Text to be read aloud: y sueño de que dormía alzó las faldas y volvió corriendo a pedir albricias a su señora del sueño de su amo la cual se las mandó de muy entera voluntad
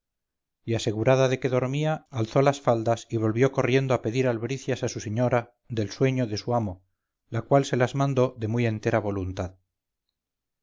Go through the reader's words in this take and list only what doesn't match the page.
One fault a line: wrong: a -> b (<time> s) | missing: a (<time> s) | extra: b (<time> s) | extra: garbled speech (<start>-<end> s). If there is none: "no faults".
wrong: sueño -> asegurada (0.7 s)